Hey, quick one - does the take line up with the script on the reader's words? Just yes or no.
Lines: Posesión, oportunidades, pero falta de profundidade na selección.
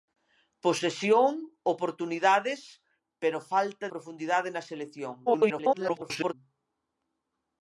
no